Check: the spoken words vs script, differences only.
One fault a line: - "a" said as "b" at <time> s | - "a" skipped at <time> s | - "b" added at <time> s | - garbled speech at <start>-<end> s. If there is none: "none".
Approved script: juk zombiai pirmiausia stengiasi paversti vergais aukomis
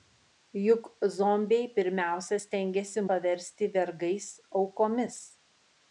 none